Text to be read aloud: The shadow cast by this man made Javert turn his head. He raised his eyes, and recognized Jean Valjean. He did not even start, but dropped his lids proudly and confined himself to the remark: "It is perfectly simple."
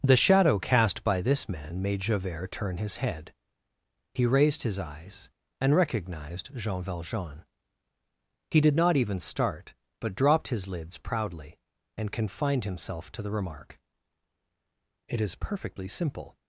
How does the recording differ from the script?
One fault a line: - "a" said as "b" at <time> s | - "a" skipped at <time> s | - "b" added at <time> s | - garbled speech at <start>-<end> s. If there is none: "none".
none